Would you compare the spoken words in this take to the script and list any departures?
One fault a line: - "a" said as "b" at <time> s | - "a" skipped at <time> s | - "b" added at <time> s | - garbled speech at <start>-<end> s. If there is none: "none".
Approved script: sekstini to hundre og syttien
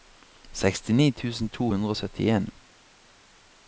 - "tusen" added at 1.2 s